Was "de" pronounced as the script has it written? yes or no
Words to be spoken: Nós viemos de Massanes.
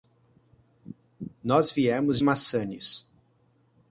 no